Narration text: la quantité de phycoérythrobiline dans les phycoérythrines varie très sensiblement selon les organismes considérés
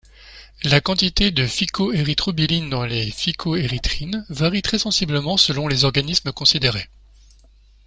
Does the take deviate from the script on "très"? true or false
false